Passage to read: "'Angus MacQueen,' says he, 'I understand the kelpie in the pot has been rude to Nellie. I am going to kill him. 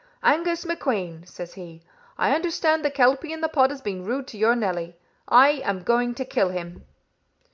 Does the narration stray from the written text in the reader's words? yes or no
yes